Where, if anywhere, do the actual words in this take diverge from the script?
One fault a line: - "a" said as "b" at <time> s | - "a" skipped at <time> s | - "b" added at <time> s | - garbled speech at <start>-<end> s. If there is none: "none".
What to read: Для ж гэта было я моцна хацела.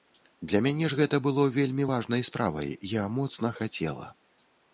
- "мяне" added at 0.7 s
- "вельмі важнай справай" added at 1.6 s